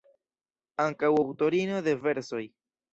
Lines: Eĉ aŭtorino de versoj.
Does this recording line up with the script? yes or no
no